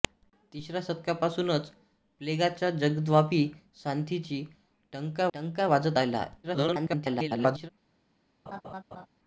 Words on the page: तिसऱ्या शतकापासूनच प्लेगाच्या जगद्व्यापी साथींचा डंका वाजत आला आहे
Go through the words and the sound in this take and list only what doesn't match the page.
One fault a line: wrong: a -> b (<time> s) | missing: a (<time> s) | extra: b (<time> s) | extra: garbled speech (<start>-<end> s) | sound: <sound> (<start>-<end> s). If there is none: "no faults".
extra: डंका (5.3 s)
extra: garbled speech (6.4-7.7 s)
sound: laugh (8.5-9.1 s)